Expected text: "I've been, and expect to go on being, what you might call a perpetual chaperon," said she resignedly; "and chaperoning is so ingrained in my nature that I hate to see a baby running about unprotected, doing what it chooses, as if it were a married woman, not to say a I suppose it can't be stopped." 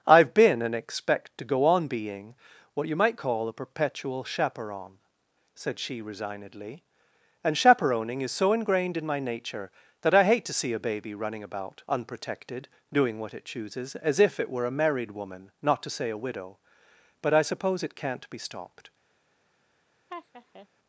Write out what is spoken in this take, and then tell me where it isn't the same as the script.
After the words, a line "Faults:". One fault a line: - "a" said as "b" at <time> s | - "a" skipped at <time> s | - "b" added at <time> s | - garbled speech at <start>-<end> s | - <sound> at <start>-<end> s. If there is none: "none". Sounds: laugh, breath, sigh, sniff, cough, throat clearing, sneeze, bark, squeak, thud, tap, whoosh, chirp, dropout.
"I've been, and expect to go on being, what you might call a perpetual chaperon," said she resignedly; "and chaperoning is so ingrained in my nature that I hate to see a baby running about unprotected, doing what it chooses, as if it were a married woman, not to say a widow. But I suppose it can't be stopped."
Faults:
- "widow But" added at 16.2 s
- laugh at 20.1-20.7 s